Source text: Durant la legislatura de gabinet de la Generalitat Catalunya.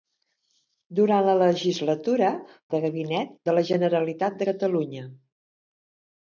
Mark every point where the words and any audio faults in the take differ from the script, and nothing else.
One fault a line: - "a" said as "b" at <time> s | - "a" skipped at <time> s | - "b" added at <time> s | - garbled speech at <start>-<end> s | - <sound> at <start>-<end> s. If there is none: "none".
none